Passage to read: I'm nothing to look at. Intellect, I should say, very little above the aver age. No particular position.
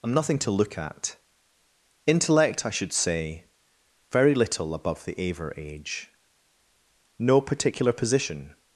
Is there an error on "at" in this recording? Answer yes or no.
no